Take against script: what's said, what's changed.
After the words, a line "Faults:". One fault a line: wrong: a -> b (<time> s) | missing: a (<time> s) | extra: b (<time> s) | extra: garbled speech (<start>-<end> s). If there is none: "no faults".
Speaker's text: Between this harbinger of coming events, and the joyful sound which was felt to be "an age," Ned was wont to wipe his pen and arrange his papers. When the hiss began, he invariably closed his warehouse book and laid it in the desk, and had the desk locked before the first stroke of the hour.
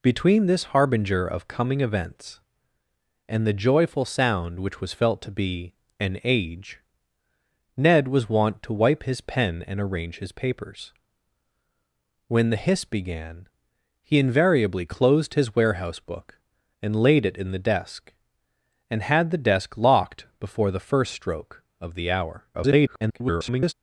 Between this harbinger of coming events, and the joyful sound which was felt to be "an age," Ned was wont to wipe his pen and arrange his papers. When the hiss began, he invariably closed his warehouse book and laid it in the desk, and had the desk locked before the first stroke of the hour. [garbled]
Faults:
extra: garbled speech (22.5-23.7 s)